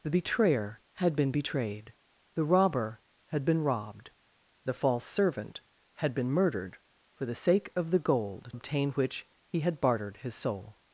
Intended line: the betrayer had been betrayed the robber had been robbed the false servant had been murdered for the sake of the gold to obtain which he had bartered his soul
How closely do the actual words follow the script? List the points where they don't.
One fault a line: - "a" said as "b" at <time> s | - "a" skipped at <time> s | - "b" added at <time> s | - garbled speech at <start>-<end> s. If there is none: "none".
- "to" skipped at 8.5 s